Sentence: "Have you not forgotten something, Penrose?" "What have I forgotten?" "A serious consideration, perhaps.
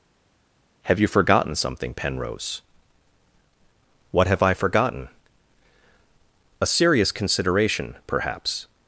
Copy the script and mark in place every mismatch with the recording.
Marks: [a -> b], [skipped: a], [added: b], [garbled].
"Have you [skipped: not] forgotten something, Penrose?" "What have I forgotten?" "A serious consideration, perhaps.